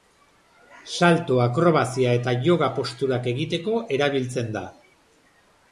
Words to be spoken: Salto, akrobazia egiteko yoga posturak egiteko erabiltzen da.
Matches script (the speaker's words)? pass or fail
fail